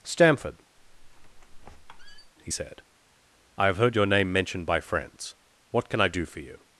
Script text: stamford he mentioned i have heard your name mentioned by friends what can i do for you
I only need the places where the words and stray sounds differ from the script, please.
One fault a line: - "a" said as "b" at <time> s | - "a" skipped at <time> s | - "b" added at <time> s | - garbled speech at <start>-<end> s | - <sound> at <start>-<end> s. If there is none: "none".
- squeak at 0.8-2.3 s
- "mentioned" said as "said" at 2.5 s